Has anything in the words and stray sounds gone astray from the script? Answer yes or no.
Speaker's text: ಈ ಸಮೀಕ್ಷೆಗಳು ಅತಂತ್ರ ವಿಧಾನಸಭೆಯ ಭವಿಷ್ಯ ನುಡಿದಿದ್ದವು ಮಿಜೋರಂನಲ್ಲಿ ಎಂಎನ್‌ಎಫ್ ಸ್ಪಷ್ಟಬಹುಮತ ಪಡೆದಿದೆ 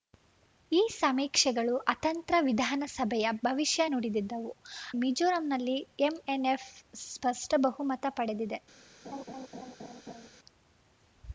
yes